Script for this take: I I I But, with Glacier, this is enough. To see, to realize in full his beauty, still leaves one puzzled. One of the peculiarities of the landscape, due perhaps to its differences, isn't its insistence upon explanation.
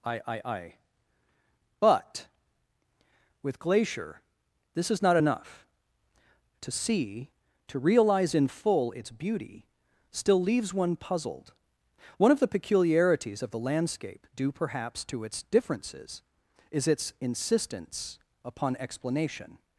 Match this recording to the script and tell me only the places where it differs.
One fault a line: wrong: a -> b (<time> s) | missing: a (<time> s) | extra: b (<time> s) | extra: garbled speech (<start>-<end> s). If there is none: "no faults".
extra: not (5.0 s)
wrong: his -> its (8.9 s)
wrong: isn't -> is (16.7 s)